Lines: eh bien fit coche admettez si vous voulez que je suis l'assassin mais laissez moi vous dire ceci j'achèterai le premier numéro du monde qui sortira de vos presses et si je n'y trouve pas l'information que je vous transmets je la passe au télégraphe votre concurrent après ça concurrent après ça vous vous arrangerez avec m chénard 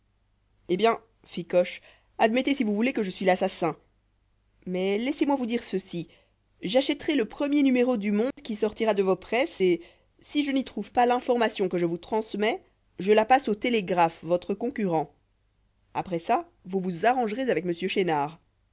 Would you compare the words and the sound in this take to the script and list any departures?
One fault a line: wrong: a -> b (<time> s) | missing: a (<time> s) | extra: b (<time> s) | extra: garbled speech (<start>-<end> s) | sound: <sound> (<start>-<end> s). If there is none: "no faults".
sound: dropout (8.3-8.4 s)
missing: concurrent après ça (16.5 s)